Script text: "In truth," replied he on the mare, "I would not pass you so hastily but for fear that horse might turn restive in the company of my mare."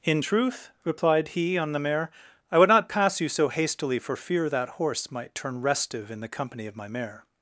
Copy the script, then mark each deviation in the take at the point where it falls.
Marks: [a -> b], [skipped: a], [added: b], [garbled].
"In truth," replied he on the mare, "I would not pass you so hastily [skipped: but] for fear that horse might turn restive in the company of my mare."